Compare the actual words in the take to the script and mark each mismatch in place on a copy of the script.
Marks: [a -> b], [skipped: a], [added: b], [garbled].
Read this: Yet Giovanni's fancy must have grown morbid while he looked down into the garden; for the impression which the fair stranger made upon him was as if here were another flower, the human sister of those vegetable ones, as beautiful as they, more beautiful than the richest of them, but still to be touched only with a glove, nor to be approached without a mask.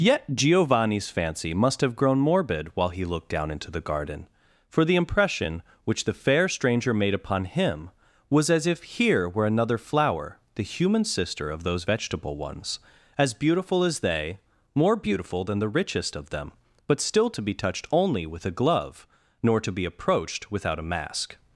Yet Giovanni's fancy must have grown morbid while he looked down into the garden; for the impression which the fair stranger made upon him was as if here were another flower, the human sister of those vegetable ones, as beautiful as they, more beautiful than the richest of them, but still to be touched only with a glove, nor to be approached without a mask.